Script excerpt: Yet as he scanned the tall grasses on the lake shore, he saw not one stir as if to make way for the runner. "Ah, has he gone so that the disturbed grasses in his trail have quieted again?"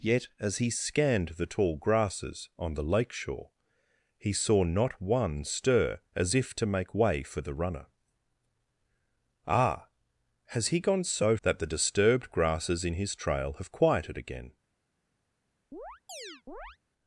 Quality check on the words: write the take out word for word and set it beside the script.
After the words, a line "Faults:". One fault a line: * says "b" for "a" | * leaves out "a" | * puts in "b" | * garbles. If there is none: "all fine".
Yet as he scanned the tall grasses on the lake shore, he saw not one stir as if to make way for the runner. "Ah, has he gone so that the disturbed grasses in his trail have quieted again?"
Faults:
all fine